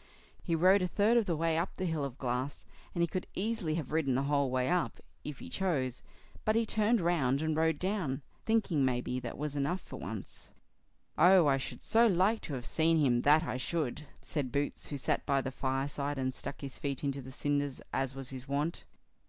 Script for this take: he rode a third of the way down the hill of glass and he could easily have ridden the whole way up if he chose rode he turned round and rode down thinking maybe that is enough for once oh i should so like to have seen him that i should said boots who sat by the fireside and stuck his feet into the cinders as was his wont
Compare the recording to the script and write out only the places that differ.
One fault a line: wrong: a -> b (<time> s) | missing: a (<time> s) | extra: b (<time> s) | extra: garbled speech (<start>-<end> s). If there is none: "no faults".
wrong: down -> up (1.6 s)
wrong: rode -> but (6.4 s)
wrong: is -> was (9.4 s)